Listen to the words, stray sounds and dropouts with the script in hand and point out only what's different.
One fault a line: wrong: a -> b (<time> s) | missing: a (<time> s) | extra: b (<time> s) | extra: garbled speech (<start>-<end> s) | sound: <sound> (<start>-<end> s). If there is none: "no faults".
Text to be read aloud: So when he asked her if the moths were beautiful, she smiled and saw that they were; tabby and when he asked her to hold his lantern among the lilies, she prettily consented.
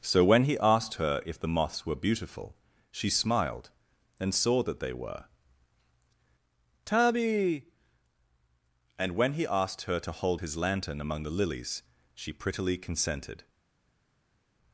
no faults